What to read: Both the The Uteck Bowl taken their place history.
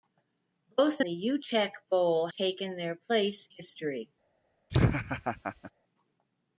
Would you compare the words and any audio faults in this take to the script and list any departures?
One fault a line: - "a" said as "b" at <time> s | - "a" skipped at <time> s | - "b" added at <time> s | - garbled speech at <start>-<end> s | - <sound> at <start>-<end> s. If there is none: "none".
- laugh at 4.7-5.7 s